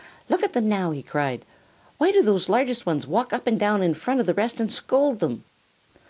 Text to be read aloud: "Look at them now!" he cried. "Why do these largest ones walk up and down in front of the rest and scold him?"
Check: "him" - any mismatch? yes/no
yes